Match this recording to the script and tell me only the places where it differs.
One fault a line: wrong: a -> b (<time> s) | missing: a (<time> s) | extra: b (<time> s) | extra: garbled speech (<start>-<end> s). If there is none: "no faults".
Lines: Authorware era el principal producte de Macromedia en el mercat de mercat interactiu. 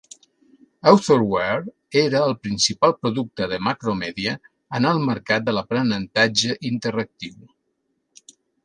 wrong: mercat -> l'aprenentatge (5.6 s)